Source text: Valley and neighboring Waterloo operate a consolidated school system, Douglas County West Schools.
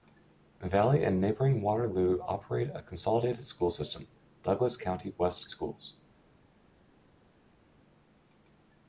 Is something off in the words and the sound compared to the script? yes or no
no